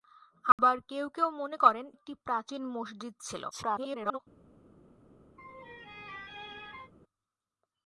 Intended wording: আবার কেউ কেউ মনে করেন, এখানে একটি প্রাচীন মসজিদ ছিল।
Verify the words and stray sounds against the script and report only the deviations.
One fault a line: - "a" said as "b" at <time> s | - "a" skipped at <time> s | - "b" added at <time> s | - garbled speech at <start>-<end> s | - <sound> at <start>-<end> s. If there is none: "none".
- dropout at 0.5-0.6 s
- "এখানে" skipped at 1.9 s
- garbled speech at 3.5-4.2 s
- laugh at 5.4-6.9 s